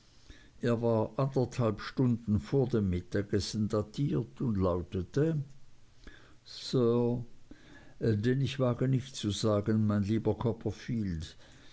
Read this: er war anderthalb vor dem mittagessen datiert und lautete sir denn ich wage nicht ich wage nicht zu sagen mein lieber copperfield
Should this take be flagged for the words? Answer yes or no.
yes